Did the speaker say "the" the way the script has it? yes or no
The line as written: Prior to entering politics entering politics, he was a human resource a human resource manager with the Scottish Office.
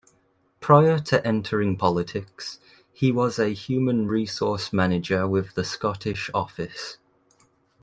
yes